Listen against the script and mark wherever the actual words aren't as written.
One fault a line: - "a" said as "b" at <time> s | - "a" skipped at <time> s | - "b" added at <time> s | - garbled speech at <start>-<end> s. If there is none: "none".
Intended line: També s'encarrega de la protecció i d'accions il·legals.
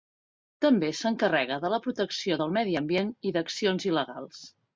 - "del medi ambient" added at 2.4 s